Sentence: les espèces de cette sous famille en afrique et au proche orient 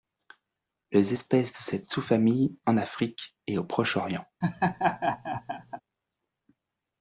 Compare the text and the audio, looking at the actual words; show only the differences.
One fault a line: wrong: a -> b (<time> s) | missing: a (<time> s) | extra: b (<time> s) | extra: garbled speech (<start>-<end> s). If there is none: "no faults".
no faults